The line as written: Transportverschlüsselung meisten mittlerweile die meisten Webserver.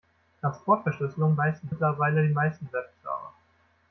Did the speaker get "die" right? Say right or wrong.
right